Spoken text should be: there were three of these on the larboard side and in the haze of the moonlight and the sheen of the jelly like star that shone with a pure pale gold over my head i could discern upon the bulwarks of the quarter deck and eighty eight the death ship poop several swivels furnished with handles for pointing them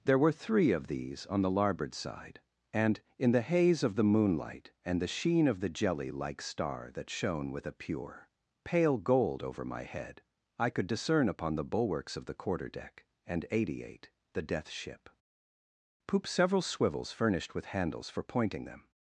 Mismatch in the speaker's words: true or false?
false